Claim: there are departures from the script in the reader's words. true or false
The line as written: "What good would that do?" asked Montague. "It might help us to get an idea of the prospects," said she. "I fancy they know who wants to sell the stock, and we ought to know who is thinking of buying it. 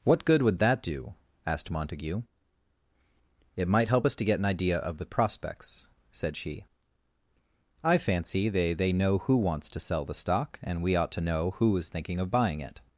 true